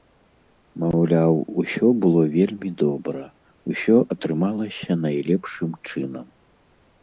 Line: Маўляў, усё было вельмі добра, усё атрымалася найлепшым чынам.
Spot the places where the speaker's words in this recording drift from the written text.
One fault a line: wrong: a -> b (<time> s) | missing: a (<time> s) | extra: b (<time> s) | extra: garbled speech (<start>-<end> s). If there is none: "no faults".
no faults